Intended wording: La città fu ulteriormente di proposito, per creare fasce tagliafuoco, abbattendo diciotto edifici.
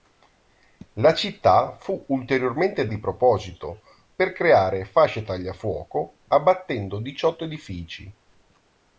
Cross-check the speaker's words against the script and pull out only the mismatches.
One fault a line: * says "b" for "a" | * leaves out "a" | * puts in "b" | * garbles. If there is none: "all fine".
all fine